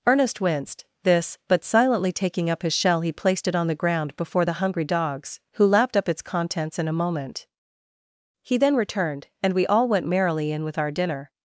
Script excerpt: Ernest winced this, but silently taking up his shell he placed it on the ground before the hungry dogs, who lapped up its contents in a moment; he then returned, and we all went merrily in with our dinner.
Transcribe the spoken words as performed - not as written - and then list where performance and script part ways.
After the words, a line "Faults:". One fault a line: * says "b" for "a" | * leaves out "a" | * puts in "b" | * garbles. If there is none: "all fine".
Ernest winced this, but silently taking up his shell he placed it on the ground before the hungry dogs, who lapped up its contents in a moment; he then returned, and we all went merrily in with our dinner.
Faults:
all fine